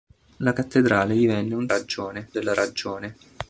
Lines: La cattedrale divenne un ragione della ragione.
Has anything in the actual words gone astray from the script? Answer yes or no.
no